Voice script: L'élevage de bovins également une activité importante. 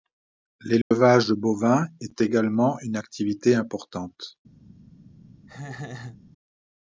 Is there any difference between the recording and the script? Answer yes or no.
yes